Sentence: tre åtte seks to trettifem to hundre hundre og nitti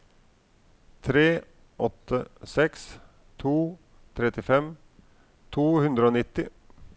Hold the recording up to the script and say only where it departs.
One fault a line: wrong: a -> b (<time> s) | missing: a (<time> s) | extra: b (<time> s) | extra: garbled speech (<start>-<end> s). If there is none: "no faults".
missing: hundre (6.1 s)